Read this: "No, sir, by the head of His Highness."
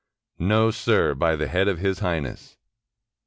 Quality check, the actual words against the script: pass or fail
pass